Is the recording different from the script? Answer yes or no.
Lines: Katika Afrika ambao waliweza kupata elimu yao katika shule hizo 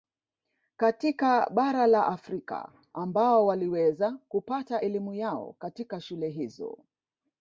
yes